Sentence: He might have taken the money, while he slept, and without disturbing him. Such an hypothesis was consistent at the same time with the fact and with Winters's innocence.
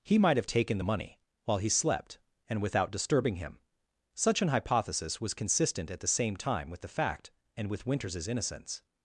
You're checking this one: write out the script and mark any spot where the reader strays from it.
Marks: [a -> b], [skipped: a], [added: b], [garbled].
He might have taken the money, while he slept, and without disturbing him. Such an hypothesis was consistent at the same time with the fact and with Winters's innocence.